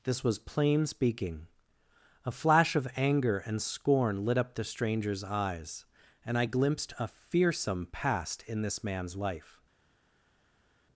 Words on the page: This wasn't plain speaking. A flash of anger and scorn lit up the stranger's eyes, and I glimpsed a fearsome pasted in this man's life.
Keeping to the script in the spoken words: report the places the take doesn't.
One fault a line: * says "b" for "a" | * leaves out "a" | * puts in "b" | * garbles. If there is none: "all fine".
* says "was" for "wasn't"
* says "past" for "pasted"